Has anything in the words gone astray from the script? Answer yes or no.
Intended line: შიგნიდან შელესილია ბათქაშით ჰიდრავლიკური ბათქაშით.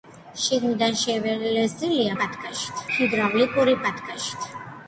no